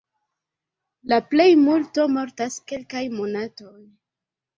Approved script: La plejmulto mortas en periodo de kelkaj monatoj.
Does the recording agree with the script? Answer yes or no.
no